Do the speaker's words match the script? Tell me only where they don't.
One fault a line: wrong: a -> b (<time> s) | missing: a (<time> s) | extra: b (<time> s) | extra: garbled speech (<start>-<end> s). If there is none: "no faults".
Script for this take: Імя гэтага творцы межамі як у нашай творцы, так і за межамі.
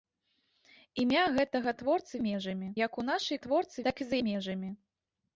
no faults